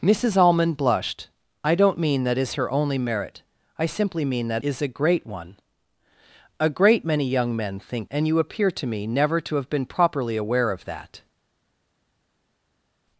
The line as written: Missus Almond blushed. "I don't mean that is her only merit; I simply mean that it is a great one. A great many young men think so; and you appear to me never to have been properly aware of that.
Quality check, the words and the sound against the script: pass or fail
fail